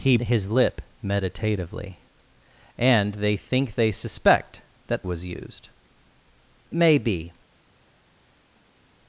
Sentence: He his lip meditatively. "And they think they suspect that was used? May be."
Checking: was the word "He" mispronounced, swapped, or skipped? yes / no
no